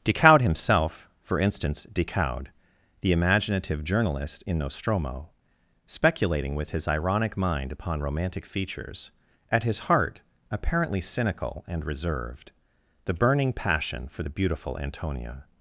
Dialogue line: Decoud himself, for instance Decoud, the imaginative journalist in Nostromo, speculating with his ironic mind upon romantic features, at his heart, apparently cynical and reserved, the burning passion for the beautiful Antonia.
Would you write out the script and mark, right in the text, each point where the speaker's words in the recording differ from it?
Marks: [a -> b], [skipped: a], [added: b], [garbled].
Decoud himself, for instance Decoud, the imaginative journalist in Nostromo, speculating with his ironic mind upon romantic features, at his heart, apparently cynical and reserved, the burning passion for the beautiful Antonia.